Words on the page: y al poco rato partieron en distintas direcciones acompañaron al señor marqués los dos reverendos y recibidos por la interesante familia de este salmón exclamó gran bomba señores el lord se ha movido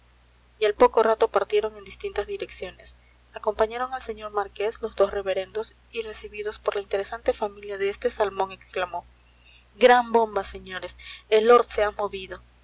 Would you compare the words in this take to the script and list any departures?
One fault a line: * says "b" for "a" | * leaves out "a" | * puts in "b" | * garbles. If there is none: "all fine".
all fine